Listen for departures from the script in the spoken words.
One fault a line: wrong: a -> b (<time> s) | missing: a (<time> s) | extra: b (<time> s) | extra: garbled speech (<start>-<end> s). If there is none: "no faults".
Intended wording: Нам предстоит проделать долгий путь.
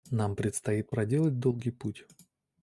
no faults